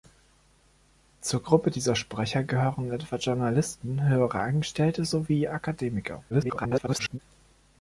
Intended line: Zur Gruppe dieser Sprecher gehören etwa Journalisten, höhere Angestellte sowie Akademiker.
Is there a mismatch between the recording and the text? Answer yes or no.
yes